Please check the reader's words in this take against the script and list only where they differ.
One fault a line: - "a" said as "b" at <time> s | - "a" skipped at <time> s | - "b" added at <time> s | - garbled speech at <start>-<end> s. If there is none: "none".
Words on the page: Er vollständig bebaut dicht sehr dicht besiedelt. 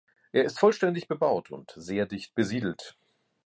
- "ist" added at 0.5 s
- "dicht" said as "und" at 1.5 s